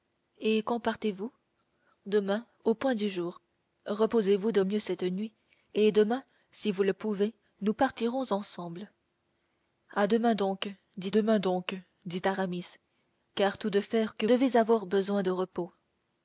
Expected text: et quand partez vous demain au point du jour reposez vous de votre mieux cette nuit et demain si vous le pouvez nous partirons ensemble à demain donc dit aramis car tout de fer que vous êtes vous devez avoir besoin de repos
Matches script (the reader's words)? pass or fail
fail